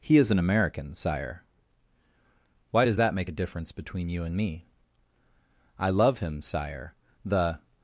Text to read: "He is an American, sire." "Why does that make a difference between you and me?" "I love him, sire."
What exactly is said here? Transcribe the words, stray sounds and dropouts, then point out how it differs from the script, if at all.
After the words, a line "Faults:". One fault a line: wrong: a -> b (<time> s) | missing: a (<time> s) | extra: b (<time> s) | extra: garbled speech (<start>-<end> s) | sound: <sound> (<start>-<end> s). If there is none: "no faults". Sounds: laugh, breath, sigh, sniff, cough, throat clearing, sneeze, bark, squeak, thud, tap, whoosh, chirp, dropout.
"He is an American, sire." "Why does that make a difference between you and me?" "I love him, sire." The
Faults:
extra: The (7.2 s)